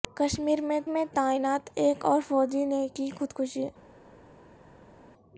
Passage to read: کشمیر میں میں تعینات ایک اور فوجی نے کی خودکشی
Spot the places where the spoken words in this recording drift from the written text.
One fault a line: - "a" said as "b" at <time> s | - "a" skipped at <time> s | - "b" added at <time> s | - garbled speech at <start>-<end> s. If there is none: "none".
none